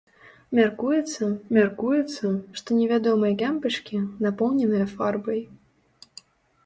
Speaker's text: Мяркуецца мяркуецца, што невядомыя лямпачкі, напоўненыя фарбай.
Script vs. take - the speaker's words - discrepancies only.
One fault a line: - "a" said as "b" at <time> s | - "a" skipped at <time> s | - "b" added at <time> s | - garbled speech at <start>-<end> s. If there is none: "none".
none